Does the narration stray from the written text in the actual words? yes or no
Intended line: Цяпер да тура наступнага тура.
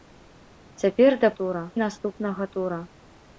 no